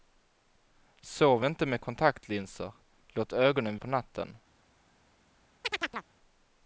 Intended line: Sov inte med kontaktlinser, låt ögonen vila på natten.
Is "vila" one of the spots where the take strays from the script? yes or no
yes